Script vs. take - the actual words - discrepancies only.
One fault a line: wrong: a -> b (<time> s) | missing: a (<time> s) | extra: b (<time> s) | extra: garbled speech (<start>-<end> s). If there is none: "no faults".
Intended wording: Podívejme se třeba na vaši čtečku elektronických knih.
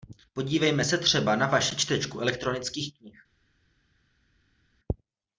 no faults